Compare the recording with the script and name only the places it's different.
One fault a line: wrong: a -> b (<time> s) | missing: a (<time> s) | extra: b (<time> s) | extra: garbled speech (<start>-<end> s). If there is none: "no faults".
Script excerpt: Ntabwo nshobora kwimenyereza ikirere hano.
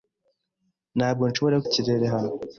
missing: kwimenyereza (1.6 s)